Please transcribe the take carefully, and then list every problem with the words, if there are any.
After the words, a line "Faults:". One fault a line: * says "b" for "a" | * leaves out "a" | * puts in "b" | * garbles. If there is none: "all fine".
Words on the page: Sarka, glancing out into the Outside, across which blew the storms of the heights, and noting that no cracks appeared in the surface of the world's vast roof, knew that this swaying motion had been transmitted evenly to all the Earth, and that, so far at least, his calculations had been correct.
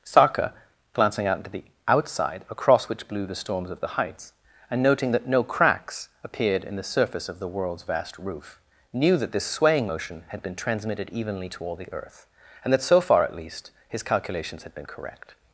Sarka, glancing out into the Outside, across which blew the storms of the heights, and noting that no cracks appeared in the surface of the world's vast roof, knew that this swaying motion had been transmitted evenly to all the Earth, and that, so far at least, his calculations had been correct.
Faults:
all fine